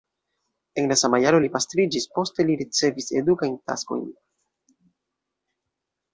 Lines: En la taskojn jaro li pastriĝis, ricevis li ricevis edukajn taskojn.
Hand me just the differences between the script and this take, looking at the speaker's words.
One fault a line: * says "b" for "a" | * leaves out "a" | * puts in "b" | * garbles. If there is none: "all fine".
* says "sama" for "taskojn"
* says "poste" for "ricevis"